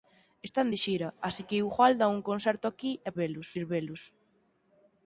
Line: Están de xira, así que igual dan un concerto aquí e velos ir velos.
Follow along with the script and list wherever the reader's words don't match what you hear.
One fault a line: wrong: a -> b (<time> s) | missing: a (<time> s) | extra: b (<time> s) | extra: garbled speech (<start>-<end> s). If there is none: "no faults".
no faults